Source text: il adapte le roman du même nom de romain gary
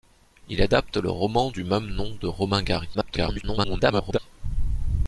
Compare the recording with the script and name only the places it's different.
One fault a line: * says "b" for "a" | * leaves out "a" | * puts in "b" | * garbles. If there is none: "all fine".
* garbles